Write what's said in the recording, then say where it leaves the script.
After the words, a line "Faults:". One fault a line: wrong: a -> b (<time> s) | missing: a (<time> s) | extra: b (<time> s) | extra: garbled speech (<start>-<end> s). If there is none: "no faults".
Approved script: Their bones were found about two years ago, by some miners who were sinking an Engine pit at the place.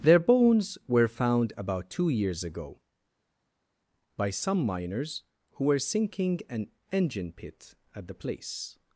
Their bones were found about two years ago, by some miners who were sinking an Engine pit at the place.
Faults:
no faults